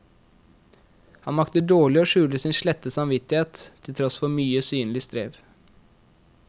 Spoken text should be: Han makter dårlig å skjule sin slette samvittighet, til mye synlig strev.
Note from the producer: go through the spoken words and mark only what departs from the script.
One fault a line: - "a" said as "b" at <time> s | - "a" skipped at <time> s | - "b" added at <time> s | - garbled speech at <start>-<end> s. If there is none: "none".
- "tross for" added at 4.0 s